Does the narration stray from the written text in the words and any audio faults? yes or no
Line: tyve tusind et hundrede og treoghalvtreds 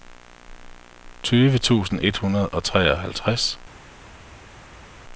no